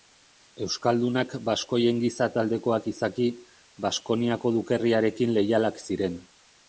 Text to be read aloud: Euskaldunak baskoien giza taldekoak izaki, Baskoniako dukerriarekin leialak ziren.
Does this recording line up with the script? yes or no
yes